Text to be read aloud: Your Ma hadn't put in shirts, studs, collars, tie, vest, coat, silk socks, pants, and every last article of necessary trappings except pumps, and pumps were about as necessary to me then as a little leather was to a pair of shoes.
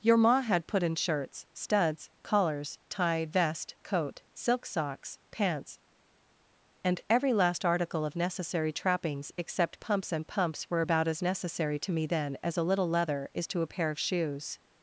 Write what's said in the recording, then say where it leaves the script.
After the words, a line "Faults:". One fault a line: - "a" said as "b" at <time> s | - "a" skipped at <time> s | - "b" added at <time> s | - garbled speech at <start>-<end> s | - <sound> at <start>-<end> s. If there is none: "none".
Your Ma had put in shirts, studs, collars, tie, vest, coat, silk socks, pants, and every last article of necessary trappings except pumps, and pumps were about as necessary to me then as a little leather is to a pair of shoes.
Faults:
- "hadn't" said as "had" at 0.4 s
- "was" said as "is" at 13.3 s